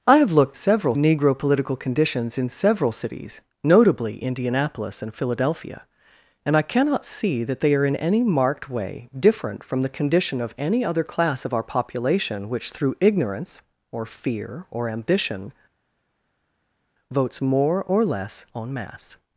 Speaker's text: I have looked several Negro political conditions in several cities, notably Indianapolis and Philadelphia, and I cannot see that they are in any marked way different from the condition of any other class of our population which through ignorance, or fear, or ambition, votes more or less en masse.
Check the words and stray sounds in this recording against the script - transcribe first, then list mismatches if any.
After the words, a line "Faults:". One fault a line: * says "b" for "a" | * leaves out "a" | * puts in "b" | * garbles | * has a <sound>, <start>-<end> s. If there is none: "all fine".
I have looked several Negro political conditions in several cities, notably Indianapolis and Philadelphia, and I cannot see that they are in any marked way different from the condition of any other class of our population which through ignorance, or fear, or ambition, votes more or less en masse.
Faults:
all fine